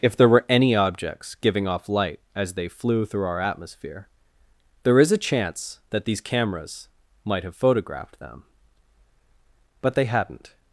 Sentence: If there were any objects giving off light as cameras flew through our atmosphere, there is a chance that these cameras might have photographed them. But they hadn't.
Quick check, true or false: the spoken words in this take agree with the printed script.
false